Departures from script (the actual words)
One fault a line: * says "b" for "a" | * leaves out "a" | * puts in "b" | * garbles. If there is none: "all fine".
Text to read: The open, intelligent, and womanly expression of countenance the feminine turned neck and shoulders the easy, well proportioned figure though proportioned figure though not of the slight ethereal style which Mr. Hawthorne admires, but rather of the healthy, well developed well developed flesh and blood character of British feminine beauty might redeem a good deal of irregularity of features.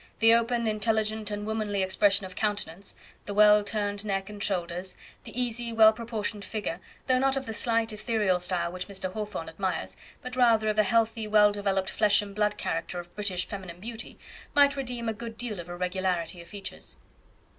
* says "well" for "feminine"
* leaves out "proportioned figure though"
* leaves out "well developed"